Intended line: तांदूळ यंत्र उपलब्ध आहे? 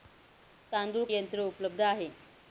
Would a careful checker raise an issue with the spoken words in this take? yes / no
no